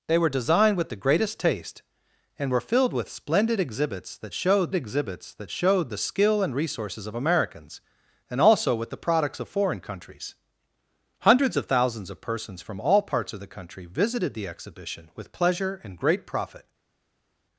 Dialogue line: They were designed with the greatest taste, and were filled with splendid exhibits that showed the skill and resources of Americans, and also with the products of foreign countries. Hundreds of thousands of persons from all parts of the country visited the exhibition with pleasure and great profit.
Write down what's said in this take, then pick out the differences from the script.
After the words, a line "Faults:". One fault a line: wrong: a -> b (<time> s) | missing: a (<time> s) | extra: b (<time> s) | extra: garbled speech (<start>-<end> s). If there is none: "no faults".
They were designed with the greatest taste, and were filled with splendid exhibits that showed exhibits that showed the skill and resources of Americans, and also with the products of foreign countries. Hundreds of thousands of persons from all parts of the country visited the exhibition with pleasure and great profit.
Faults:
extra: exhibits that showed (4.7 s)